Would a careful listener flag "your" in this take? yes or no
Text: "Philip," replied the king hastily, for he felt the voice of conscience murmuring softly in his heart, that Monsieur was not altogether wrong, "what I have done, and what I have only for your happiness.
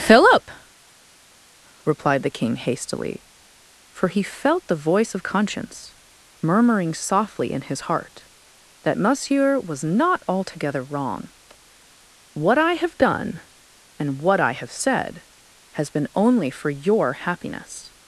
no